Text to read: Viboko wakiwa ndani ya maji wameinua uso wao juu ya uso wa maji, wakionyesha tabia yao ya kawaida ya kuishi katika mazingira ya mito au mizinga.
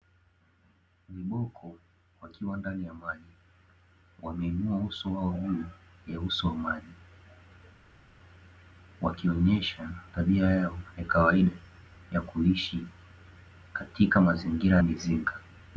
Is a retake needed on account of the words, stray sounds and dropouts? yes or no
yes